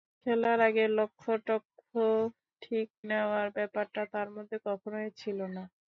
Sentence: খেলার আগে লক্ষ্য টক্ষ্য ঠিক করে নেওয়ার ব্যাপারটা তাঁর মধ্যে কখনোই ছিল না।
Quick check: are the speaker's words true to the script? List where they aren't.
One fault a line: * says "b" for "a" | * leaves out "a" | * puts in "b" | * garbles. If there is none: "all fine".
* leaves out "করে"